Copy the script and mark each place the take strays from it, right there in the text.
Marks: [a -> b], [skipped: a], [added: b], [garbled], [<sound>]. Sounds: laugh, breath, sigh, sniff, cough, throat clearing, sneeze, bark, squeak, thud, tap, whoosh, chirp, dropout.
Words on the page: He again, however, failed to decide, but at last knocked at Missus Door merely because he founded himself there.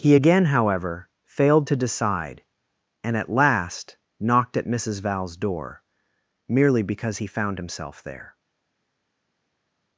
He again, however, failed to decide, [but -> and] at last knocked at Missus [added: Val's] Door merely because he [founded -> found] himself there.